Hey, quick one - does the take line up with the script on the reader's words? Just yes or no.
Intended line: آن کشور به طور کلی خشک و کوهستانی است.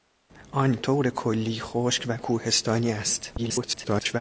no